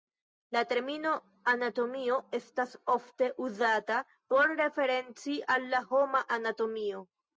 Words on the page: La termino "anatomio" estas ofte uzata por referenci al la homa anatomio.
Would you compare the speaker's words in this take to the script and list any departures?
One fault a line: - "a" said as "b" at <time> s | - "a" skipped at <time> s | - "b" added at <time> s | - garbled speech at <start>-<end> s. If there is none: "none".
none